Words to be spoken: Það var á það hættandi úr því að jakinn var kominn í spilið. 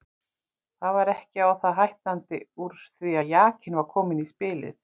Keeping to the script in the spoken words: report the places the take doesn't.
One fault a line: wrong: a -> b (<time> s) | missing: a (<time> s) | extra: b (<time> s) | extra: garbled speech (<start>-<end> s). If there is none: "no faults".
extra: ekki (1.1 s)